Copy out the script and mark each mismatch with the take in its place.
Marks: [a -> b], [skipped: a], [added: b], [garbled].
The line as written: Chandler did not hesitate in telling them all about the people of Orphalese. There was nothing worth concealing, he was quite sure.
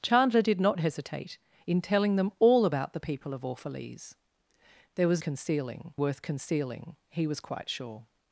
Chandler did not hesitate in telling them all about the people of Orphalese. There was [nothing -> concealing] worth concealing, he was quite sure.